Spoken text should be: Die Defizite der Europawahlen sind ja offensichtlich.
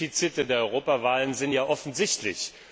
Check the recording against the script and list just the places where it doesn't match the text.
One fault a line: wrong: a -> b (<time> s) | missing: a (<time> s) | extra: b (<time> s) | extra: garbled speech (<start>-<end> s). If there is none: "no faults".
no faults